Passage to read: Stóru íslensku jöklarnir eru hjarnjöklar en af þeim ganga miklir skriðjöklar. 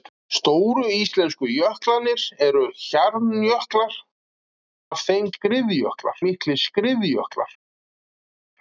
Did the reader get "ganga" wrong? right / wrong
wrong